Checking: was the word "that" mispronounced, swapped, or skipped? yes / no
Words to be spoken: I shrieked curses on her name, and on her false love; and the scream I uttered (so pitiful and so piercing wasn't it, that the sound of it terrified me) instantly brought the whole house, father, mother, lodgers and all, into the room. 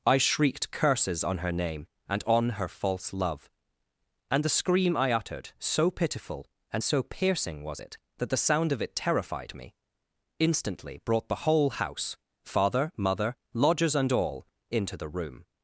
no